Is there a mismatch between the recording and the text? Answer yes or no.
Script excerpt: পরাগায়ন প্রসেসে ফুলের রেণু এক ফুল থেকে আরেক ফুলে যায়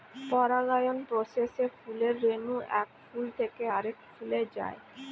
no